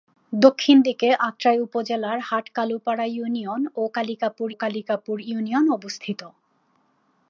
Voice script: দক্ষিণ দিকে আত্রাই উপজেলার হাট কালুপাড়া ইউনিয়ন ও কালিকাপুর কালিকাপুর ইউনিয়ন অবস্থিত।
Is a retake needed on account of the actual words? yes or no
no